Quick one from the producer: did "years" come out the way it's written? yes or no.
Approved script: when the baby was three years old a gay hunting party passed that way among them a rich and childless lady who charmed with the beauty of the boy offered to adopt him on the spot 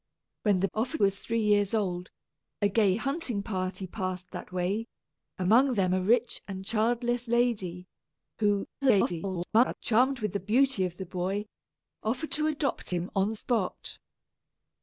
yes